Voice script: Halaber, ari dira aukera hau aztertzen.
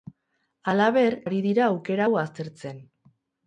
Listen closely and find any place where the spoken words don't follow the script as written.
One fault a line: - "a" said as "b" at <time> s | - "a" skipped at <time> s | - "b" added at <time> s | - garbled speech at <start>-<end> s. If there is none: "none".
none